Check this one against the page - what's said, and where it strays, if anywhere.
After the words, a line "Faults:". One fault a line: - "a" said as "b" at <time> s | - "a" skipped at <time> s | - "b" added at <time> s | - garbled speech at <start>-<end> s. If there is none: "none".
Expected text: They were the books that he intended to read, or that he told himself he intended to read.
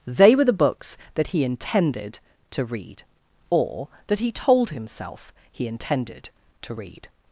They were the books that he intended to read, or that he told himself he intended to read.
Faults:
none